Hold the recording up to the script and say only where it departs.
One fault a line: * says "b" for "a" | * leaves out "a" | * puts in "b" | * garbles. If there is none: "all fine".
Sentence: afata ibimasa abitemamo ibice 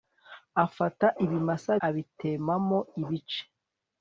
all fine